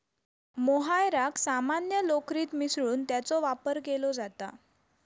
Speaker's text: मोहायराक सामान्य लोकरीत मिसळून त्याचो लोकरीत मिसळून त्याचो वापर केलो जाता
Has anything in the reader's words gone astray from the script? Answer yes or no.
yes